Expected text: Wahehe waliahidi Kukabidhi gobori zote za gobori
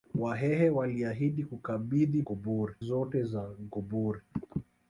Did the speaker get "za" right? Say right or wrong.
right